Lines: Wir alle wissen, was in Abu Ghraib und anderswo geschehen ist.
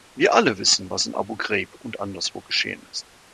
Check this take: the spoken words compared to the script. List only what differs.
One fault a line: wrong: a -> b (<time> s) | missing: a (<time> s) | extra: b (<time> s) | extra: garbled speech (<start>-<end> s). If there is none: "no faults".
no faults